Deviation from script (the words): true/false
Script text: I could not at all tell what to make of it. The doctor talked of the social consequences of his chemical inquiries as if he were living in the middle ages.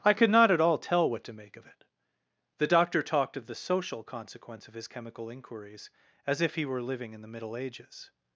true